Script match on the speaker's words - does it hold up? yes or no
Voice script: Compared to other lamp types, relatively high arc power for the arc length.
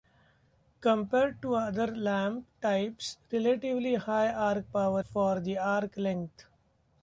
yes